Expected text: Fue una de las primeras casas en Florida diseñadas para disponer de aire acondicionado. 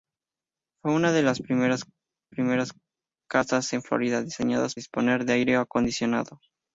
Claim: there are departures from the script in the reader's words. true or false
true